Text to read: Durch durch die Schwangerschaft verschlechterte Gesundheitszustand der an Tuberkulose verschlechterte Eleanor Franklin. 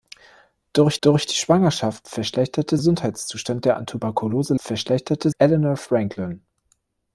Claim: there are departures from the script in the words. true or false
false